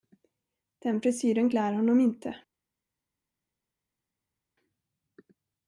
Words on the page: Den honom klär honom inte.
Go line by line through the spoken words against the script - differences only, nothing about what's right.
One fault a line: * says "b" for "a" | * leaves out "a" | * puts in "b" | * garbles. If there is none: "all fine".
* says "frisyren" for "honom"